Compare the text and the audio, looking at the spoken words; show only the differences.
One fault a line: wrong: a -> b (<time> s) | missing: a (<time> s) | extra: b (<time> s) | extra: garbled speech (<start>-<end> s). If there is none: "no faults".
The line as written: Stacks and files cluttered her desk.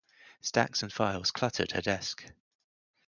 no faults